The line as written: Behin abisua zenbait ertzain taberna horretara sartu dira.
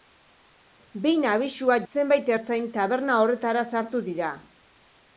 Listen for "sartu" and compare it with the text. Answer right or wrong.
right